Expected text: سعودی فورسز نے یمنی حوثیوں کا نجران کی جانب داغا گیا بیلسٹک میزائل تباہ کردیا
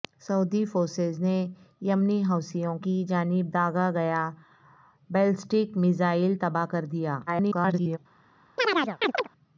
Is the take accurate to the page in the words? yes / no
no